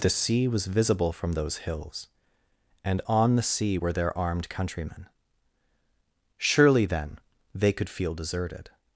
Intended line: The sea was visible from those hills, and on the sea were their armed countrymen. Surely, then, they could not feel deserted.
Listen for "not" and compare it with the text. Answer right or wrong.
wrong